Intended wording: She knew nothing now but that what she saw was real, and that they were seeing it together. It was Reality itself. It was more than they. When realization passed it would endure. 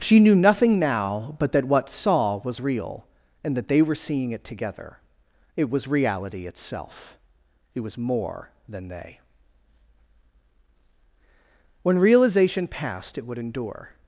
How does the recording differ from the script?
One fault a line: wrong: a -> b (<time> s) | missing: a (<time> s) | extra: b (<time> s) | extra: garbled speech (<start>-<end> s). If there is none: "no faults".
missing: she (1.9 s)